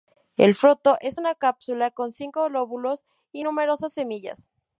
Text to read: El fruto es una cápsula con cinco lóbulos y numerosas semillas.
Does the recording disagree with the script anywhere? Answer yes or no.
no